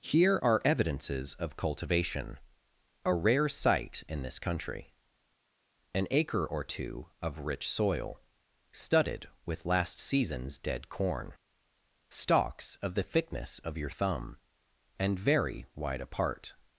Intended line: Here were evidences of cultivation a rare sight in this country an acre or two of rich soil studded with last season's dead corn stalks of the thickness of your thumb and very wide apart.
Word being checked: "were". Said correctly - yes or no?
no